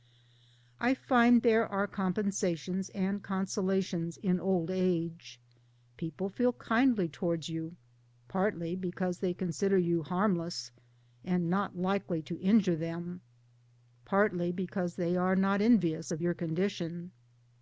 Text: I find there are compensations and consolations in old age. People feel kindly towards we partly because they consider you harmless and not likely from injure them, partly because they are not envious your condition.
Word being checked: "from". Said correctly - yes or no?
no